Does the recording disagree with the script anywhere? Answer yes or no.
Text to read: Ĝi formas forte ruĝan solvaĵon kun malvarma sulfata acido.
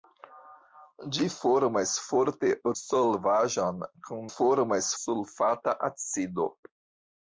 yes